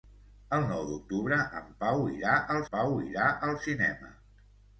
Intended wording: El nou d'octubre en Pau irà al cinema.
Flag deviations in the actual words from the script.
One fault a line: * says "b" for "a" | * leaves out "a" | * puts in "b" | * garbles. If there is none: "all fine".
* puts in "Pau irà al"